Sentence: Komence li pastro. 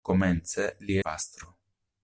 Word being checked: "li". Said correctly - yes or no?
yes